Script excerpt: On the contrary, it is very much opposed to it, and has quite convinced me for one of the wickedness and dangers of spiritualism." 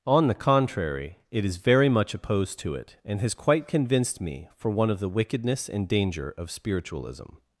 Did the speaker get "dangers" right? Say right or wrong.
wrong